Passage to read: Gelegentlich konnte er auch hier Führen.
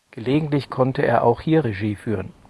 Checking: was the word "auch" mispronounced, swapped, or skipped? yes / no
no